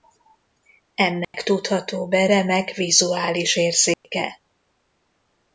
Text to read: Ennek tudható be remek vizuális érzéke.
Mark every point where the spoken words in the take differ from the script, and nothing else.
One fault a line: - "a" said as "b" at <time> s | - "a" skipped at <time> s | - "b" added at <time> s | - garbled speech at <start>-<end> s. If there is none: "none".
none